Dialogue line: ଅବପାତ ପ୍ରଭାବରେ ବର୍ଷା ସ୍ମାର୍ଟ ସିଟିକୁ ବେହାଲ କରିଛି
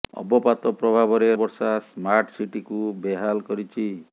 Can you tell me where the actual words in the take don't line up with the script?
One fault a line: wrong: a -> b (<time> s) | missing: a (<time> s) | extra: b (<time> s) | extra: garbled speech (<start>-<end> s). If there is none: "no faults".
no faults